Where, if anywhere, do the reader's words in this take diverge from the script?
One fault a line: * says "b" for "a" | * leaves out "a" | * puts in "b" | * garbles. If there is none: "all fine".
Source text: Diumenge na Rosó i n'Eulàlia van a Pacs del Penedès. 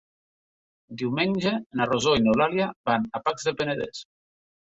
all fine